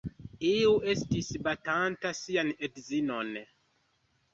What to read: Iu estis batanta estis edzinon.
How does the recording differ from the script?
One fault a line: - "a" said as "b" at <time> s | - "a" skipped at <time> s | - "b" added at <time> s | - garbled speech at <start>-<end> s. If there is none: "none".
- "estis" said as "sian" at 2.2 s